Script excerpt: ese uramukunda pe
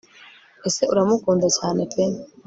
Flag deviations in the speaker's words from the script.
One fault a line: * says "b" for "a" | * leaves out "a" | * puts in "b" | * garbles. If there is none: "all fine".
* puts in "cyane"